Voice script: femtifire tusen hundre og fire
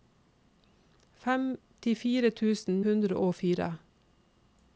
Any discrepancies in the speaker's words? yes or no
no